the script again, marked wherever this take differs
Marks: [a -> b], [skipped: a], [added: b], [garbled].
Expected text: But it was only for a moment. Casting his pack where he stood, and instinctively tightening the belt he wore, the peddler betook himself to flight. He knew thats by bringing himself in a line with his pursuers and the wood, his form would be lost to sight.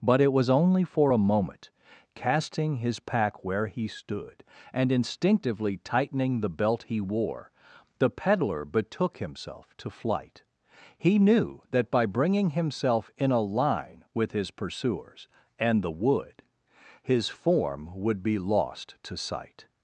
But it was only for a moment. Casting his pack where he stood, and instinctively tightening the belt he wore, the peddler betook himself to flight. He knew [thats -> that] by bringing himself in a line with his pursuers and the wood, his form would be lost to sight.